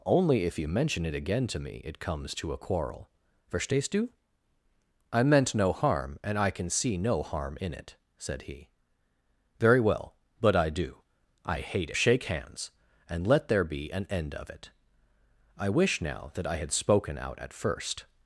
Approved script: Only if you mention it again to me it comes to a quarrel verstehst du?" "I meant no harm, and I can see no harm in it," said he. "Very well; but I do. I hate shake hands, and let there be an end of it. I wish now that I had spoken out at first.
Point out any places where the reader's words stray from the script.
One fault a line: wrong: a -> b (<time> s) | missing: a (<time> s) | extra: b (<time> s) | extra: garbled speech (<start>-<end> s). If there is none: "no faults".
no faults